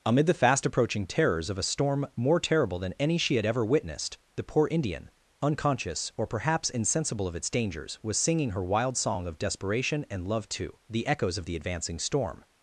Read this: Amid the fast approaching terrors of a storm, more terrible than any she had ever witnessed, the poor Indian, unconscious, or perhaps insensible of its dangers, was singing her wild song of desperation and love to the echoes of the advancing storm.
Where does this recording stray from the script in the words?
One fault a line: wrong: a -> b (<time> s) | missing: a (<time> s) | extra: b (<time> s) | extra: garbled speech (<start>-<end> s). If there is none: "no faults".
no faults